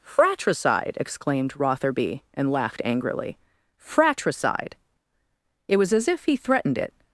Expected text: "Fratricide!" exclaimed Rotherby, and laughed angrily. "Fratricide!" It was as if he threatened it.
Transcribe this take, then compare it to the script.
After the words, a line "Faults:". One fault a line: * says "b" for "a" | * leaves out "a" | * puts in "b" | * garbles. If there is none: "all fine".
"Fratricide!" exclaimed Rotherby, and laughed angrily. "Fratricide!" It was as if he threatened it.
Faults:
all fine